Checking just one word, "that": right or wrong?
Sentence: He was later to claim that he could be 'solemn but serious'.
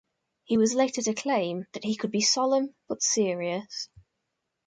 right